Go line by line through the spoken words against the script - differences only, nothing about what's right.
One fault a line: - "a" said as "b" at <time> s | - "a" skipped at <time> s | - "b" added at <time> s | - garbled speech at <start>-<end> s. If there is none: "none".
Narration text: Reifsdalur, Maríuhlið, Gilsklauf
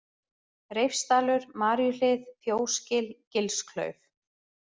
- "Fjósgil" added at 2.5 s